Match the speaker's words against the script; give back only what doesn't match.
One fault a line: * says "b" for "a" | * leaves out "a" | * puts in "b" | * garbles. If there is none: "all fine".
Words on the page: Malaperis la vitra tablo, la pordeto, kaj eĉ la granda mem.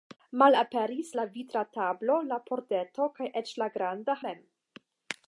all fine